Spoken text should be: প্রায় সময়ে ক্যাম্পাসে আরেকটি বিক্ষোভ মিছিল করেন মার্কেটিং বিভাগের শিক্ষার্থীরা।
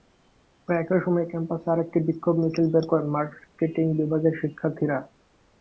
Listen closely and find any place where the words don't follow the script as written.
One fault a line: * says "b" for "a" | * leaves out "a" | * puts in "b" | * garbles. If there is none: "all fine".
* puts in "একই"
* puts in "বের"